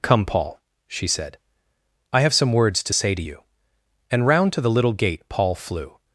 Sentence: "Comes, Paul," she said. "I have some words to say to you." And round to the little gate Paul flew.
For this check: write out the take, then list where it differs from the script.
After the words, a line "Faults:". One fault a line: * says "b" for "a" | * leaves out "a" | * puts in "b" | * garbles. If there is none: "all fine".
"Come, Paul," she said. "I have some words to say to you." And round to the little gate Paul flew.
Faults:
* says "Come" for "Comes"